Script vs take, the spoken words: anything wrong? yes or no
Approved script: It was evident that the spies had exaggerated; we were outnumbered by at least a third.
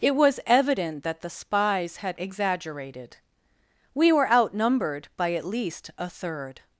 no